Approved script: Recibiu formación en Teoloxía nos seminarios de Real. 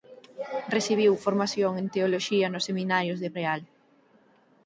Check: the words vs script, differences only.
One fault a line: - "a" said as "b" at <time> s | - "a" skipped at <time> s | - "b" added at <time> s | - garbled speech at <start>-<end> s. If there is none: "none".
none